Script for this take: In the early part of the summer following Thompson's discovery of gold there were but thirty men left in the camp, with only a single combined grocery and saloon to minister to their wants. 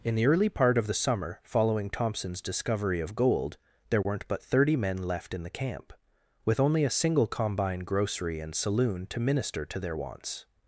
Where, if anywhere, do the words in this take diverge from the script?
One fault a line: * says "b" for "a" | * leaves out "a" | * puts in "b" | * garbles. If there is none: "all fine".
* says "weren't" for "were"
* says "combine" for "combined"